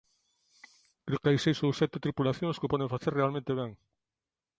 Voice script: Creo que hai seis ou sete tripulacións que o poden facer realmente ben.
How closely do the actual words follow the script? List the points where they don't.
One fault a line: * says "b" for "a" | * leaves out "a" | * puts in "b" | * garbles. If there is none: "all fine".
all fine